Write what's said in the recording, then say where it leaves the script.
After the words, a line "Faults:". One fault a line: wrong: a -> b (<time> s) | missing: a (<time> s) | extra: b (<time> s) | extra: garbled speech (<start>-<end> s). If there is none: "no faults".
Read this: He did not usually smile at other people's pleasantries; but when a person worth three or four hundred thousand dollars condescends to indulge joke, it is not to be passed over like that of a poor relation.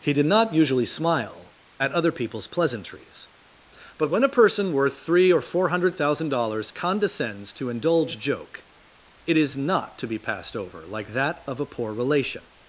He did not usually smile at other people's pleasantries; but when a person worth three or four hundred thousand dollars condescends to indulge joke, it is not to be passed over like that of a poor relation.
Faults:
no faults